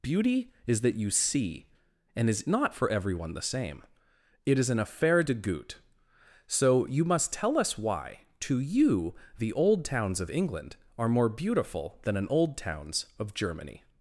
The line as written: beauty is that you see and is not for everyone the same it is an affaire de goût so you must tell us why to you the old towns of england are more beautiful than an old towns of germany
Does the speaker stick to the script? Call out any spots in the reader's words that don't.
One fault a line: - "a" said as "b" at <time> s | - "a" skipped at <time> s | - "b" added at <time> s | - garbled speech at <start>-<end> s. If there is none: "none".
none